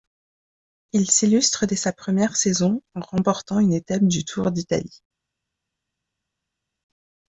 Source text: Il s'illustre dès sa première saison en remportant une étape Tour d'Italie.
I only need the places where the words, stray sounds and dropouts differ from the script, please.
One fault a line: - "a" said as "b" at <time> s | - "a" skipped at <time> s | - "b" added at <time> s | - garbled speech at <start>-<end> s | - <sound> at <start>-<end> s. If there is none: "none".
- "du" added at 4.0 s